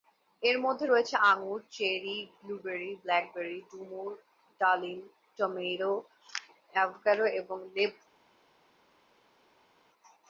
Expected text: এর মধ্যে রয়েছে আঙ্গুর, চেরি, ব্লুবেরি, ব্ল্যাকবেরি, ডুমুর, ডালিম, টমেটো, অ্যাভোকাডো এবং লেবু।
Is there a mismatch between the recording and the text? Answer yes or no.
no